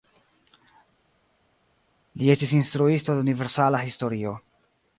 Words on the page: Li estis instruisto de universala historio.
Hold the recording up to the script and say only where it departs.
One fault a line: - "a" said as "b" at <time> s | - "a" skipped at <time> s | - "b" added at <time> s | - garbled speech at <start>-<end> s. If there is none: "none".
none